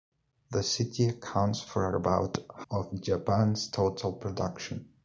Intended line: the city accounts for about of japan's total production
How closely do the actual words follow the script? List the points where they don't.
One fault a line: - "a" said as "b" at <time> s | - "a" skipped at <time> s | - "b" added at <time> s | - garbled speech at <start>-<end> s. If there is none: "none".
none